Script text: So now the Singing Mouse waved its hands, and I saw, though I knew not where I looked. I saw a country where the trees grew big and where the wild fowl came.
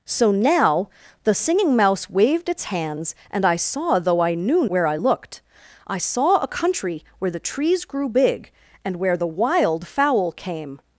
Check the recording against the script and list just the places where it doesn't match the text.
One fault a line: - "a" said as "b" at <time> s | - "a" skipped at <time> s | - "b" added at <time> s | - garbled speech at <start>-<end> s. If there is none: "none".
- "not" skipped at 4.7 s